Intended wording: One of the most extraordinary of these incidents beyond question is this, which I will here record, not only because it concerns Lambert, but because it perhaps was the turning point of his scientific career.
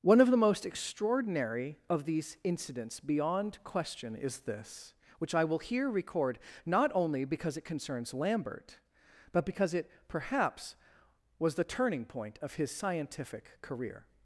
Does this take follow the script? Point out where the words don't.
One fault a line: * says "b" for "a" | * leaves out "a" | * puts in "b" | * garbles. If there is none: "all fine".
all fine